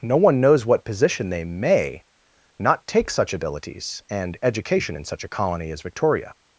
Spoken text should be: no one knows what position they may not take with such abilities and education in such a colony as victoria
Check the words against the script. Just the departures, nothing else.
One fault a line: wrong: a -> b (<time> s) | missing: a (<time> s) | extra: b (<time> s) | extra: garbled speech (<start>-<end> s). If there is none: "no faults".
missing: with (3.1 s)